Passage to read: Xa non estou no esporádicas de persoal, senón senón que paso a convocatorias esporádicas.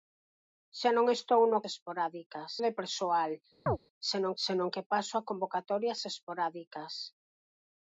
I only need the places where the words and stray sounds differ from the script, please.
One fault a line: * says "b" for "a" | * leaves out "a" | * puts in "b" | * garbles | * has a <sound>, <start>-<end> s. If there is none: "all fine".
* has a chirp, 3.7-3.8 s